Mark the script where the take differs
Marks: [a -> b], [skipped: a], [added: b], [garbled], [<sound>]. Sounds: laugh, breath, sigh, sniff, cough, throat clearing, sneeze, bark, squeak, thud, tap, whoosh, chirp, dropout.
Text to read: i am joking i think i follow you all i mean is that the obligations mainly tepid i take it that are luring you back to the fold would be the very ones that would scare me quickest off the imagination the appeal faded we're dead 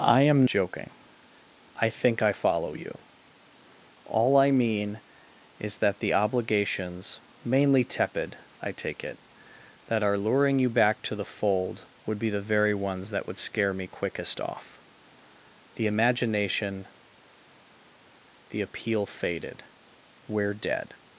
i am joking i think i follow you all i mean is that the obligations mainly tepid i take it that are luring you back to the fold would be the very ones that would scare me quickest off the imagination the appeal faded we're dead